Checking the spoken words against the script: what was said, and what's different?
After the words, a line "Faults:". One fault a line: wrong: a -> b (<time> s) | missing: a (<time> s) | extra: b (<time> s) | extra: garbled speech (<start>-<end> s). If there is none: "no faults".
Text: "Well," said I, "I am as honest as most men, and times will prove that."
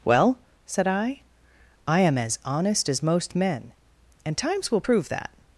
"Well," said I, "I am as honest as most men, and times will prove that."
Faults:
no faults